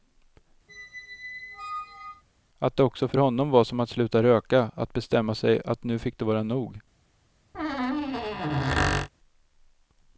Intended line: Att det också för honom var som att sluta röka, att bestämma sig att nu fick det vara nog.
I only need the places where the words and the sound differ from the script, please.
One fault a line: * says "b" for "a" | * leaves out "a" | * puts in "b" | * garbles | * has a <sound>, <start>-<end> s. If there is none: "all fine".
* has a squeak, 0.7-2.2 s
* has a squeak, 7.5-9.1 s